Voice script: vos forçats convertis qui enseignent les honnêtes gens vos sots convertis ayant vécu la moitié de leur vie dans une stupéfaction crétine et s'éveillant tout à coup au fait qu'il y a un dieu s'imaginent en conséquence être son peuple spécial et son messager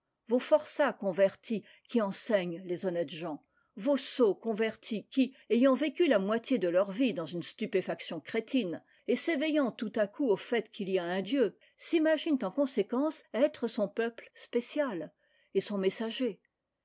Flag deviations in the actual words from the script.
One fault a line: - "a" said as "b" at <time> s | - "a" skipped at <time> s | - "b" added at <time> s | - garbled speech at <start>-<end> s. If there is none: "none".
- "qui" added at 5.1 s